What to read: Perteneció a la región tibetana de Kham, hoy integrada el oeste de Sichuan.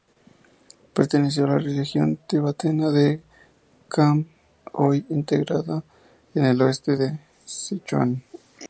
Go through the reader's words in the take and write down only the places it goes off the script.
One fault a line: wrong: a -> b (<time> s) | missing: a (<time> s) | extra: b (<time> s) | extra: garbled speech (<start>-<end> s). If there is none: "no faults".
extra: en (6.3 s)